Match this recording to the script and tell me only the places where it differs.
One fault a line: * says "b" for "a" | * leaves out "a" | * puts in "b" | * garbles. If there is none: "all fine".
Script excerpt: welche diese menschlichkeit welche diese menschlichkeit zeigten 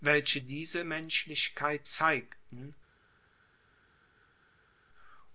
* leaves out "welche diese menschlichkeit"